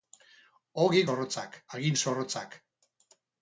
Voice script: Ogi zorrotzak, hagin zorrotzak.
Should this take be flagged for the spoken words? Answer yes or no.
no